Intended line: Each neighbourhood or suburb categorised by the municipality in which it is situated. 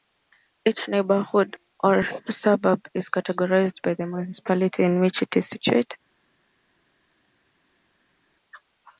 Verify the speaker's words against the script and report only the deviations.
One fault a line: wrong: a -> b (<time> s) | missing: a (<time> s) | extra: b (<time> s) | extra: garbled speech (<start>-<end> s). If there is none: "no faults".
extra: is (3.0 s)